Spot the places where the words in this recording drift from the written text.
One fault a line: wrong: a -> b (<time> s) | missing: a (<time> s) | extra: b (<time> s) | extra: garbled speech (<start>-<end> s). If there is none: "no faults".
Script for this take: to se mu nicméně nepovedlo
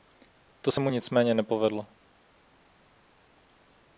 no faults